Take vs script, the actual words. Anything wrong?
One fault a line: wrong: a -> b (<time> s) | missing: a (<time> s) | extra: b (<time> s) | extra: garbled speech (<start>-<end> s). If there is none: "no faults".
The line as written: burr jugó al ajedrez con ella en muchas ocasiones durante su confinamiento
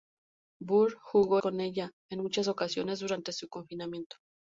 missing: al ajedrez (1.4 s)